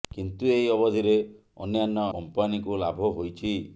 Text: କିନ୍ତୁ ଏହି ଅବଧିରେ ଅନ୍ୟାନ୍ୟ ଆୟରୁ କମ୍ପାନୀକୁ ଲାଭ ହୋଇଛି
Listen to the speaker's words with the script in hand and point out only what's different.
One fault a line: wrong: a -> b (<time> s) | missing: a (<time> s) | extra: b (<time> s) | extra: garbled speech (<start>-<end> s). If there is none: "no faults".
missing: ଆୟରୁ (2.1 s)